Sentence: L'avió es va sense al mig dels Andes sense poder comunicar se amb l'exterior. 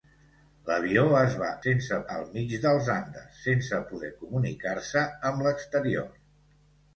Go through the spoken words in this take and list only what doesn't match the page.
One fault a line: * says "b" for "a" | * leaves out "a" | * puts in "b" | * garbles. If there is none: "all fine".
all fine